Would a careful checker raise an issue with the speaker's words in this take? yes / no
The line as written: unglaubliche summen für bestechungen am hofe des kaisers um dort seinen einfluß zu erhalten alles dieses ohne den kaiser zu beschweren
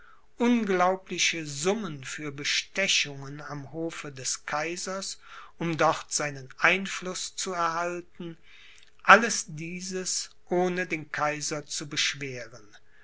no